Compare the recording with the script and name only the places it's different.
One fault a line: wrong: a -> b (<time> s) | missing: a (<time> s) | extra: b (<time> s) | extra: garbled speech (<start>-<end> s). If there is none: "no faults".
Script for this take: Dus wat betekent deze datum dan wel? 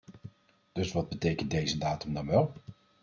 no faults